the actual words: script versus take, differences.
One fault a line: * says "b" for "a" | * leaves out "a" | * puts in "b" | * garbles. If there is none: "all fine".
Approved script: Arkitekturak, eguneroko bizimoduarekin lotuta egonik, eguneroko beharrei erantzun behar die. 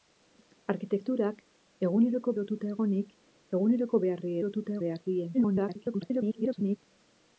* leaves out "bizimoduarekin"
* says "lotuta" for "erantzun"
* garbles